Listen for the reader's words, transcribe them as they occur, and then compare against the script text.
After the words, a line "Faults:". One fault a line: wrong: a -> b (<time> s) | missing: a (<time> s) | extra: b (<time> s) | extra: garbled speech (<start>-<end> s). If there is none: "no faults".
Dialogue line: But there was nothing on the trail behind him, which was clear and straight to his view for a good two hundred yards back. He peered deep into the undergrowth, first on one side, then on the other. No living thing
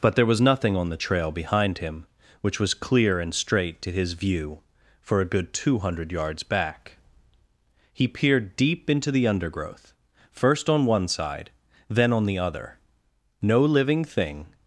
But there was nothing on the trail behind him, which was clear and straight to his view for a good two hundred yards back. He peered deep into the undergrowth, first on one side, then on the other. No living thing
Faults:
no faults